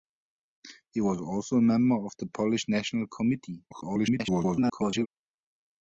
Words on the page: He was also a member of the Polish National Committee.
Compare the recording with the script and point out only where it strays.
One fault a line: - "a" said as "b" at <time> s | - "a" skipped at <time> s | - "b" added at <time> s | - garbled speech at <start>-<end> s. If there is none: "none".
- garbled speech at 3.7-5.1 s